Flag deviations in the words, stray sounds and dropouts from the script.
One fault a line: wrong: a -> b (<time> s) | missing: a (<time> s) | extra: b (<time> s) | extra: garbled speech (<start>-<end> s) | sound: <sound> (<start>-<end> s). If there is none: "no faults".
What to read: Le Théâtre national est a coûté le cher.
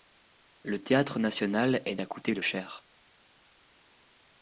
no faults